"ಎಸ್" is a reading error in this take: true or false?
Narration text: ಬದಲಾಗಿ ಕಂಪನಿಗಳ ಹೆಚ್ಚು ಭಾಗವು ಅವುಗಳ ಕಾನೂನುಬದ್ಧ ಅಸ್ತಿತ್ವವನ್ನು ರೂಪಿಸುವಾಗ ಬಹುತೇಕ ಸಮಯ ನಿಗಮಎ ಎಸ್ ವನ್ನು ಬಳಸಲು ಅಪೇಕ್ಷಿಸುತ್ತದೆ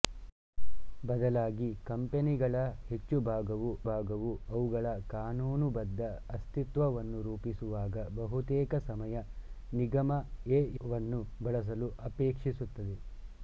true